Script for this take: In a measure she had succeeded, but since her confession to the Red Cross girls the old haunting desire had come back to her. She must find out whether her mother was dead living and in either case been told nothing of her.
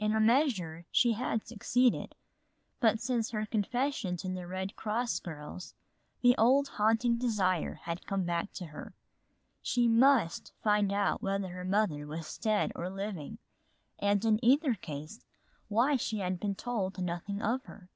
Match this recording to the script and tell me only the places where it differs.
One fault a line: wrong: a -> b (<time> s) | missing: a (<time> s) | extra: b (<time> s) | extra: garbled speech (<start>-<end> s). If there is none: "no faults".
extra: or (12.8 s)
extra: why she had (15.7 s)